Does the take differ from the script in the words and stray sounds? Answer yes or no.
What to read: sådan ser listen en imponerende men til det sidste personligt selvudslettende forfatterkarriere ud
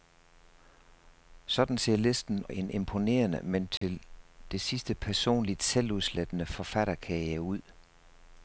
yes